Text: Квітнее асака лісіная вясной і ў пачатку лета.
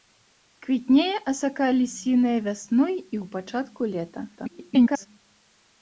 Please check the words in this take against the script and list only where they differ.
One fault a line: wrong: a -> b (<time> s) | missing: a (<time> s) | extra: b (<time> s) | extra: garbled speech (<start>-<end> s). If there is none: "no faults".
extra: garbled speech (4.4-5.1 s)